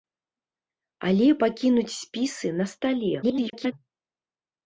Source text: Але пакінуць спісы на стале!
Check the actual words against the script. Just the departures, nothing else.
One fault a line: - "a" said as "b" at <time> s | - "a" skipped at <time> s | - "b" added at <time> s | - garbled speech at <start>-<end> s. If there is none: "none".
- garbled speech at 3.2-3.7 s